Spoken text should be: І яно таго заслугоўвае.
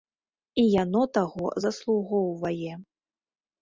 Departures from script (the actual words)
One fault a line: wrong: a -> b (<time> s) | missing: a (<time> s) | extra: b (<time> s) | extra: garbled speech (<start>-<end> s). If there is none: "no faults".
no faults